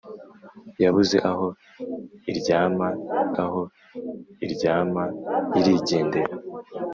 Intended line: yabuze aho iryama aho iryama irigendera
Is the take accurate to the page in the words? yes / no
yes